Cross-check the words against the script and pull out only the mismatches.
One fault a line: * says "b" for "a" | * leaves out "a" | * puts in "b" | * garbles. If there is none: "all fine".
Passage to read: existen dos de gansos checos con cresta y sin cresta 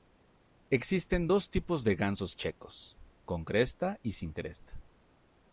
* puts in "tipos"